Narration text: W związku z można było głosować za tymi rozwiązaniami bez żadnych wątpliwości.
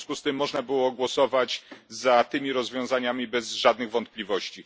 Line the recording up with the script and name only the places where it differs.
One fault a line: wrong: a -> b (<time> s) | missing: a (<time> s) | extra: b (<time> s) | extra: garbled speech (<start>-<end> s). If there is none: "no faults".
extra: tym (0.2 s)